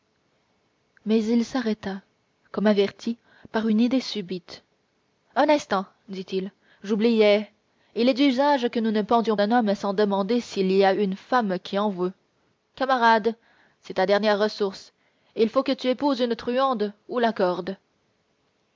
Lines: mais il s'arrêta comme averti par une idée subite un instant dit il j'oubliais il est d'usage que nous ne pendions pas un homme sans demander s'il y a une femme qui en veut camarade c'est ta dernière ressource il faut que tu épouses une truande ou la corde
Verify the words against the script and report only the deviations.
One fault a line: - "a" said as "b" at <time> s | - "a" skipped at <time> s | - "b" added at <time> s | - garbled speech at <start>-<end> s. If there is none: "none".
- "pas" skipped at 9.4 s